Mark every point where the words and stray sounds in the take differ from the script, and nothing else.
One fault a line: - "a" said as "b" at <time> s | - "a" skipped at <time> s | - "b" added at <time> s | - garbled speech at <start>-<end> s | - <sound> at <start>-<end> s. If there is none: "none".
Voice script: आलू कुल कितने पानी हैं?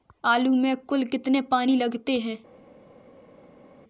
- "में" added at 0.6 s
- "लगते" added at 1.7 s